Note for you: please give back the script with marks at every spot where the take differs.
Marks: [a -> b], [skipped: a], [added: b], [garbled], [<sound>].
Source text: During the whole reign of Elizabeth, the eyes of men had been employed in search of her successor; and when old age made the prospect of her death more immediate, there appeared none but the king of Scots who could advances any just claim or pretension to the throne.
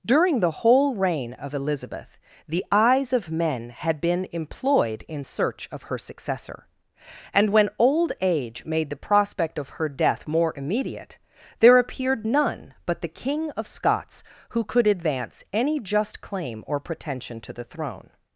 During the whole reign of Elizabeth, the eyes of men had been employed in search of her successor; and when old age made the prospect of her death more immediate, there appeared none but the king of Scots who could [advances -> advance] any just claim or pretension to the throne.